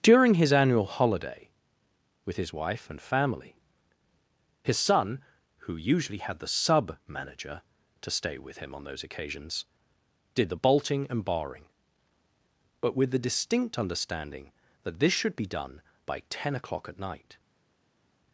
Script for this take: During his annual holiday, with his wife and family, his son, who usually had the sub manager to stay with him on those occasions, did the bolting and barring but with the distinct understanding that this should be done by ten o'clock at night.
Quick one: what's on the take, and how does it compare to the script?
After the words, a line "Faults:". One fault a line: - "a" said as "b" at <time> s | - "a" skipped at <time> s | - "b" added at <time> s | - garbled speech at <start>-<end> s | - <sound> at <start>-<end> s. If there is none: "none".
During his annual holiday, with his wife and family, his son, who usually had the sub manager to stay with him on those occasions, did the bolting and barring but with the distinct understanding that this should be done by ten o'clock at night.
Faults:
none